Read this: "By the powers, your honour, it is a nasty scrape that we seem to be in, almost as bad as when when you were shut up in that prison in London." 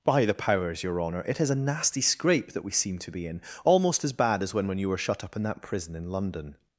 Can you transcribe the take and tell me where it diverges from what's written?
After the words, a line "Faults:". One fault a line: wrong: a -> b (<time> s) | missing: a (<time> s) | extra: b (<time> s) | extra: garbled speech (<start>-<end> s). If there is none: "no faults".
"By the powers, your honour, it is a nasty scrape that we seem to be in, almost as bad as when when you were shut up in that prison in London."
Faults:
no faults